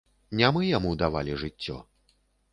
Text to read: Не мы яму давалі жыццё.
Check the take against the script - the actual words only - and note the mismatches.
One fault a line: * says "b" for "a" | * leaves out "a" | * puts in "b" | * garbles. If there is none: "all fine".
all fine